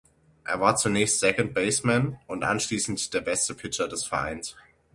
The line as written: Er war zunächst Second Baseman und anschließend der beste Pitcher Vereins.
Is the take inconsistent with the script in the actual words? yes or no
yes